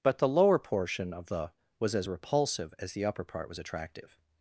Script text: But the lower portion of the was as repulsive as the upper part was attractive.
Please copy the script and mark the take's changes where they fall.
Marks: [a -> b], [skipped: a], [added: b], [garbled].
But the lower portion of the was as repulsive as the upper part was attractive.